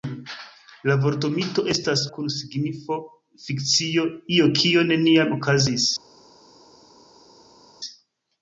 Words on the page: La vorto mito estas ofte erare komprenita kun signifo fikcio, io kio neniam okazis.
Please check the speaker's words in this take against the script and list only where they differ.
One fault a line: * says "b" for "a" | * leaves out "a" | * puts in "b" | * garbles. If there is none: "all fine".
* leaves out "ofte erare komprenita"